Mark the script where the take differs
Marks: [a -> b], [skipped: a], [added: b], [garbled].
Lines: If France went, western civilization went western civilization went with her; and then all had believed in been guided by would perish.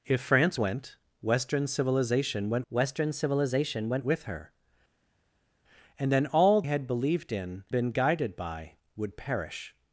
If France went, western civilization went western civilization went with her; and then all had believed in been guided by would perish.